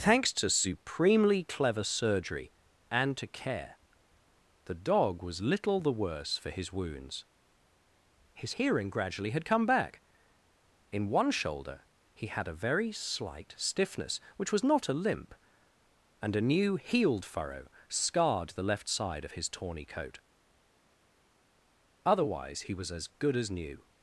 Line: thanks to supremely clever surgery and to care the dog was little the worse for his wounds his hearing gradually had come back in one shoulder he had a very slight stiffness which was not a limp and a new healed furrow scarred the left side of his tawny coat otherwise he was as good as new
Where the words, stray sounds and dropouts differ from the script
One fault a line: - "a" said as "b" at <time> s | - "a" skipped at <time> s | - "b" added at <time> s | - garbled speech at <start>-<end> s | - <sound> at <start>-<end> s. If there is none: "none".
none